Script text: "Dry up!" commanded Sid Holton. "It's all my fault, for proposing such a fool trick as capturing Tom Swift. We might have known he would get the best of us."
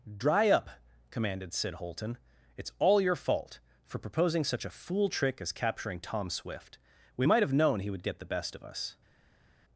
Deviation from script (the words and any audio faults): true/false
true